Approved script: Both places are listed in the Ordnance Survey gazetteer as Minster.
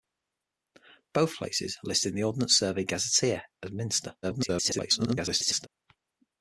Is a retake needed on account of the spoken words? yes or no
yes